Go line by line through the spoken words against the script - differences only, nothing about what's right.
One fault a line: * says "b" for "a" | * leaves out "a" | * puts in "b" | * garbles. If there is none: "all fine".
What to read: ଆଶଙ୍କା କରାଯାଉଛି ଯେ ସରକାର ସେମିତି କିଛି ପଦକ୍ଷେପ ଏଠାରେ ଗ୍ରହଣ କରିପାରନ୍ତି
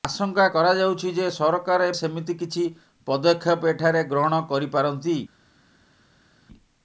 all fine